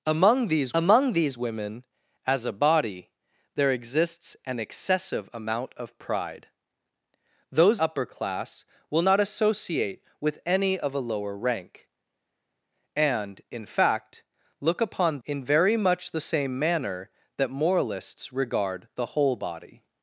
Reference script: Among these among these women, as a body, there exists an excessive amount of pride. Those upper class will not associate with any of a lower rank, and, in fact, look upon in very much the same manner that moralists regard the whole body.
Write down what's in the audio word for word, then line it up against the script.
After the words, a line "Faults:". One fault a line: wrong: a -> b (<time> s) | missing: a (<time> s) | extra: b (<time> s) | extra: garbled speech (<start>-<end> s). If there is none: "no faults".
Among these among these women, as a body, there exists an excessive amount of pride. Those upper class will not associate with any of a lower rank, and, in fact, look upon in very much the same manner that moralists regard the whole body.
Faults:
no faults